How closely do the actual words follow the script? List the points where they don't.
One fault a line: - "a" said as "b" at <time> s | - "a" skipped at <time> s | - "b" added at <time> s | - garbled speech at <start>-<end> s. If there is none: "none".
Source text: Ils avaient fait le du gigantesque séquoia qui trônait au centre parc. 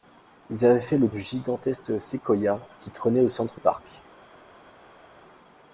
none